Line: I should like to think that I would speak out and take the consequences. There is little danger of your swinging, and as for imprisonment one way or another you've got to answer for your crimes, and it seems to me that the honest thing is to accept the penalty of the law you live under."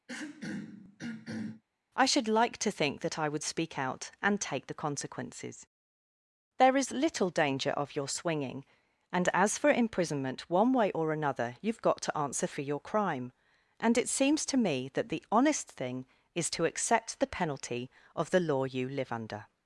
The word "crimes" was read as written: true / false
false